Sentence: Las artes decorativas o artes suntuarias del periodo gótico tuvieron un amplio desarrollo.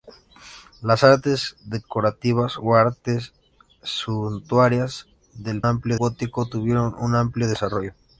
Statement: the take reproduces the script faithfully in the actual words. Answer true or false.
false